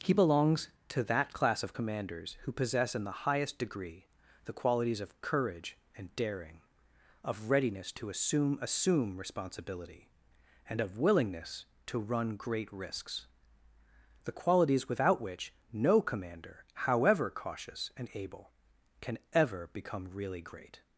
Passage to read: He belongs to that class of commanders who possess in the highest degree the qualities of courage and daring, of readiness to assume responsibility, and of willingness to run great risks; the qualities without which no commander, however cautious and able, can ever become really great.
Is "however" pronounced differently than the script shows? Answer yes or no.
no